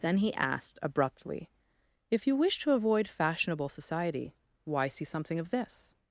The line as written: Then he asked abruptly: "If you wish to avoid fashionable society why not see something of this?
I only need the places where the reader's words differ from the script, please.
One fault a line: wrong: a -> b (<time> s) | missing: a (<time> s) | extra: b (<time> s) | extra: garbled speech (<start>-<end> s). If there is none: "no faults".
missing: not (4.9 s)